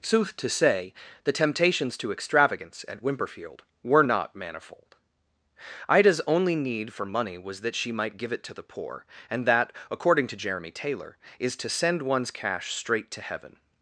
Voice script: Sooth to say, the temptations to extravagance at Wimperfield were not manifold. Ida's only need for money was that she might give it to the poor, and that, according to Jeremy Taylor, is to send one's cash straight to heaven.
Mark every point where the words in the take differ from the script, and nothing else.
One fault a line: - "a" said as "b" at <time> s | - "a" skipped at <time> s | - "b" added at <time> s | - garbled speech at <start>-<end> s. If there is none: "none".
none